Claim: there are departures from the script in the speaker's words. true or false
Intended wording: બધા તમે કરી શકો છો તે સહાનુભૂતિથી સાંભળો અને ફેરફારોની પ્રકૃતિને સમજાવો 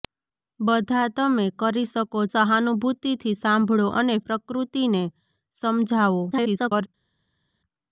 true